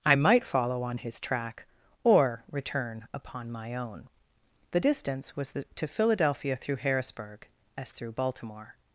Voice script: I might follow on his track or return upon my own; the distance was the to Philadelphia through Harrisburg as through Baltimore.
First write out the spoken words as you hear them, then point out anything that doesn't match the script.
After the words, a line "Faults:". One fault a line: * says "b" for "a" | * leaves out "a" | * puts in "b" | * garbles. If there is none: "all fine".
I might follow on his track or return upon my own; the distance was the to Philadelphia through Harrisburg as through Baltimore.
Faults:
all fine